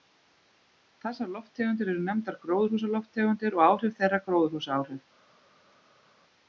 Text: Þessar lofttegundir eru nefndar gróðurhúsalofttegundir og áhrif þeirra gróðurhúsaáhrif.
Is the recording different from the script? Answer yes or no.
no